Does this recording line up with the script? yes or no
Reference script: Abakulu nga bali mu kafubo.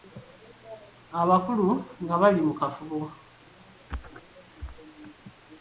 yes